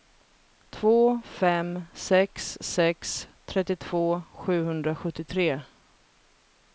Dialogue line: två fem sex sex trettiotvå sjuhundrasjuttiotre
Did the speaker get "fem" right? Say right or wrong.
right